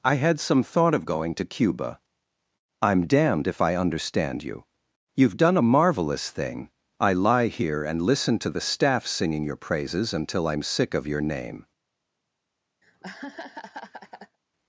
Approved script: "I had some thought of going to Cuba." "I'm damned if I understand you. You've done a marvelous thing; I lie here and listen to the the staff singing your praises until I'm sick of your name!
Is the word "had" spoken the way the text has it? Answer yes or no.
yes